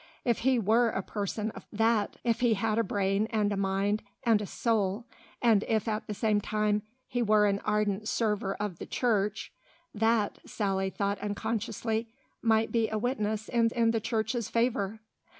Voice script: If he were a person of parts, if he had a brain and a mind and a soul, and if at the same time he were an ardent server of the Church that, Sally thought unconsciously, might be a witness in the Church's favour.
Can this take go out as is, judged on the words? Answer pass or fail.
fail